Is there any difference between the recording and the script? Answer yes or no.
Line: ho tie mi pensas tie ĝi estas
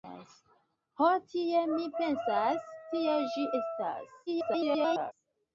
yes